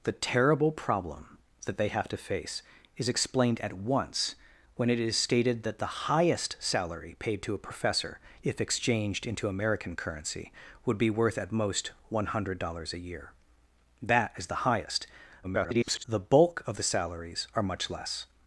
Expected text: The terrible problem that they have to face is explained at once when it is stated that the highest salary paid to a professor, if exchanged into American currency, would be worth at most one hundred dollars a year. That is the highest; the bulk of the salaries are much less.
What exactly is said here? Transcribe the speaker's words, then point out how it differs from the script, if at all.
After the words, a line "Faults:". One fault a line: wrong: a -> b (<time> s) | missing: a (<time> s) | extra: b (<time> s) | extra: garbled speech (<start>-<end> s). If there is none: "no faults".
The terrible problem that they have to face is explained at once when it is stated that the highest salary paid to a professor, if exchanged into American currency, would be worth at most one hundred dollars a year. That is the highest; [garbled] the bulk of the salaries are much less.
Faults:
extra: garbled speech (15.4-16.0 s)